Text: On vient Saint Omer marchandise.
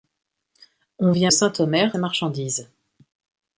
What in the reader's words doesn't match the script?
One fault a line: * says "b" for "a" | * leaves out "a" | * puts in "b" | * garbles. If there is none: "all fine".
all fine